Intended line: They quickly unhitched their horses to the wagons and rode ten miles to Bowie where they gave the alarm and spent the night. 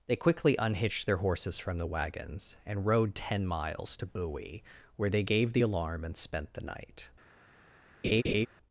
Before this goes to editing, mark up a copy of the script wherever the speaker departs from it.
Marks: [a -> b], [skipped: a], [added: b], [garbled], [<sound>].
They quickly unhitched their horses [to -> from] the wagons and rode ten miles to Bowie where they gave the alarm and spent the night. [laugh]